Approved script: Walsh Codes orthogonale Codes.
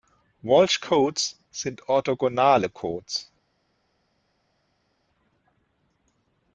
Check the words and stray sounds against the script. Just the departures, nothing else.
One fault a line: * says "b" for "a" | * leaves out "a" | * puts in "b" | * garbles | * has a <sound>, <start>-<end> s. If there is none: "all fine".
* puts in "sind"